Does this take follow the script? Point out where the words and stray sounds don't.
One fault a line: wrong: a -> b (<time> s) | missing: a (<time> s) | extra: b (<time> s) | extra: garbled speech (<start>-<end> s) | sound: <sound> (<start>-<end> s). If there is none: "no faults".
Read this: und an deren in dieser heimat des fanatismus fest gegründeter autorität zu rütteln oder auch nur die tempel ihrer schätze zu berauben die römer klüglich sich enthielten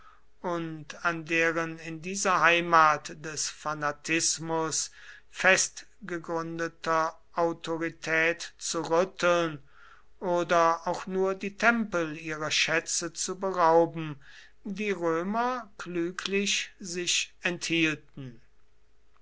no faults